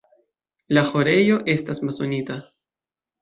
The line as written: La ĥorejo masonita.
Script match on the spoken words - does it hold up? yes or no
no